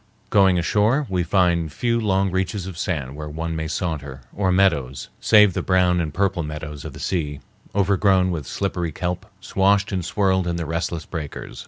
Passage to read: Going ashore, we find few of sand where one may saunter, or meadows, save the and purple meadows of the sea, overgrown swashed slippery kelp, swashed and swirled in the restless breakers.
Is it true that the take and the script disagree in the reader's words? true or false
true